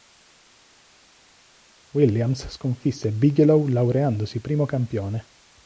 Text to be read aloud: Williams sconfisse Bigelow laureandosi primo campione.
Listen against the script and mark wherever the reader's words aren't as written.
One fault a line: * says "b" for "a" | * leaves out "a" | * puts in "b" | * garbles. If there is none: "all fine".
all fine